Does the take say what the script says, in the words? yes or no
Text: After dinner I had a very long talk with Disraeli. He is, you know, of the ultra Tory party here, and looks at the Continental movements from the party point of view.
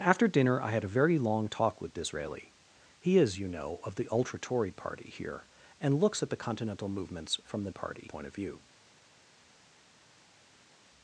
yes